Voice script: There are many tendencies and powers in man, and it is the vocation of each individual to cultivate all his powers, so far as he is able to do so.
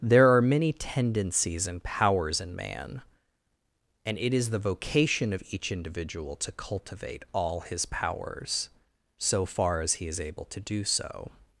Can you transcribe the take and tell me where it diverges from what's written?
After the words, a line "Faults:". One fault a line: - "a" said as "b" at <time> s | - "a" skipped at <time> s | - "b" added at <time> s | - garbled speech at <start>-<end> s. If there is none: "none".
There are many tendencies and powers in man, and it is the vocation of each individual to cultivate all his powers, so far as he is able to do so.
Faults:
none